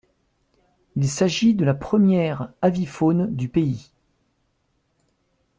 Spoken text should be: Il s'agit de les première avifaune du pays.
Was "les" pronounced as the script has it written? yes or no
no